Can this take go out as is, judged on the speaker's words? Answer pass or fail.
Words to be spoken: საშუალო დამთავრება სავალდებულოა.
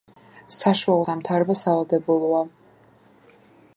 pass